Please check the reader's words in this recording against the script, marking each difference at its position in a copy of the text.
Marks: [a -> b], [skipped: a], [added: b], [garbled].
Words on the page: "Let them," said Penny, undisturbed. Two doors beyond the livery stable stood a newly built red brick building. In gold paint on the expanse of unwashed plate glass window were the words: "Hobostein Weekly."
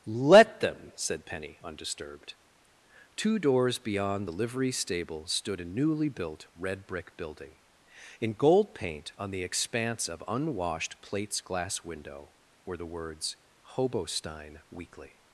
"Let them," said Penny, undisturbed. Two doors beyond the livery stable stood a newly built red brick building. In gold paint on the expanse of unwashed [plate -> plates] glass window were the words: "Hobostein Weekly."